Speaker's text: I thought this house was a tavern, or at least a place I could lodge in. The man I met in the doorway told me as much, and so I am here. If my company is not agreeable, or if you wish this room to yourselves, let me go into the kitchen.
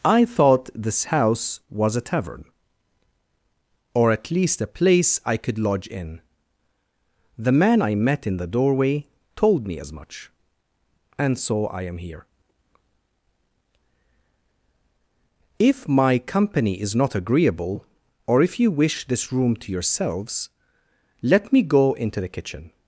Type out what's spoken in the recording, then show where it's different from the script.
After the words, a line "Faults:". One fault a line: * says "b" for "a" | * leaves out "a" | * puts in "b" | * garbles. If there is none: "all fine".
I thought this house was a tavern, or at least a place I could lodge in. The man I met in the doorway told me as much, and so I am here. If my company is not agreeable, or if you wish this room to yourselves, let me go into the kitchen.
Faults:
all fine